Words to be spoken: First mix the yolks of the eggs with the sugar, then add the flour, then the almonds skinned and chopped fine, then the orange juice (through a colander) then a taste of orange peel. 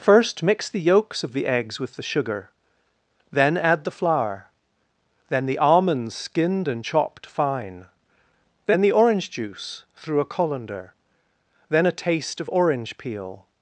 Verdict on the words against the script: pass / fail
pass